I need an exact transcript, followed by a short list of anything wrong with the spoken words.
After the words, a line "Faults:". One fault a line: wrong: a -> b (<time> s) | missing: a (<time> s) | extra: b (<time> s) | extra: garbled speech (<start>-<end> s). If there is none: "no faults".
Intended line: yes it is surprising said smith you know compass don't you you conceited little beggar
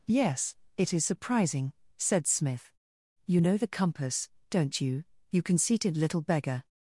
yes it is surprising said smith you know the compass don't you you conceited little beggar
Faults:
extra: the (3.6 s)